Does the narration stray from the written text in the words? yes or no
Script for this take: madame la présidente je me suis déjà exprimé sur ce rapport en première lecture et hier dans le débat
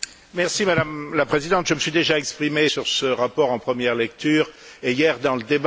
no